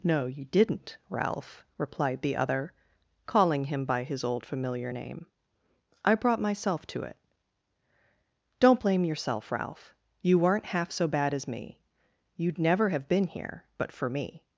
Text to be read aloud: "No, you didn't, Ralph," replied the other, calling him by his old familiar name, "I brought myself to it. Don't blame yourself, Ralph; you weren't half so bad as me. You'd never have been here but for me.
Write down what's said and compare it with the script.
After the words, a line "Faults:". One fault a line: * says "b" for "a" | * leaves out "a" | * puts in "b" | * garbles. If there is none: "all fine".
"No, you didn't, Ralph," replied the other, calling him by his old familiar name, "I brought myself to it. Don't blame yourself, Ralph; you weren't half so bad as me. You'd never have been here but for me.
Faults:
all fine